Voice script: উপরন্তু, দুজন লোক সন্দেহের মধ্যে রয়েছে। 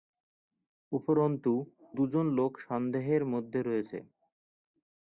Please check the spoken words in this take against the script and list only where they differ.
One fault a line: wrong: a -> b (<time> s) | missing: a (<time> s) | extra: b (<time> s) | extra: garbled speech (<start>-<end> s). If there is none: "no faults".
no faults